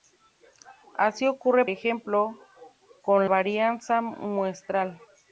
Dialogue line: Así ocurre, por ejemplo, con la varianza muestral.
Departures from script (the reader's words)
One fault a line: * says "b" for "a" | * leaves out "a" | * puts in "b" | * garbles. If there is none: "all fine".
* leaves out "por"
* leaves out "la"